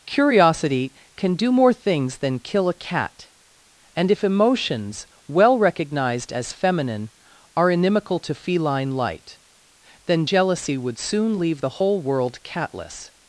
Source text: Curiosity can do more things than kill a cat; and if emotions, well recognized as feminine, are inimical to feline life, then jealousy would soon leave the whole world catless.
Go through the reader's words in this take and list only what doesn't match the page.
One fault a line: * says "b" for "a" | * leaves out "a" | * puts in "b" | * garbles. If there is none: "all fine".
* says "light" for "life"